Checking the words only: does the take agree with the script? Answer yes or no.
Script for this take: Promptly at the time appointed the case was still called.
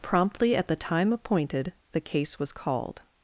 no